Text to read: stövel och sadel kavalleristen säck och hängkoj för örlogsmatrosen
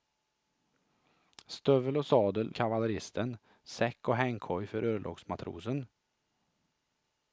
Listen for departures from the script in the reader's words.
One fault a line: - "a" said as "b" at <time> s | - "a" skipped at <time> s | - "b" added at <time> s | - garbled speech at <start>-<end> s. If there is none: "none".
none